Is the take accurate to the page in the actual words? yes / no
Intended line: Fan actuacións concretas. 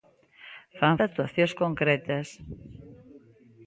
yes